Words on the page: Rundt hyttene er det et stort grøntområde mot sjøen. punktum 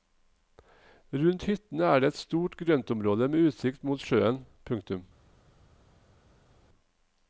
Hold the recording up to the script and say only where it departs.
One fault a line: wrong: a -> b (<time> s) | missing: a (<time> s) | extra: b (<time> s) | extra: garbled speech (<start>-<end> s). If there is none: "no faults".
extra: med utsikt (3.3 s)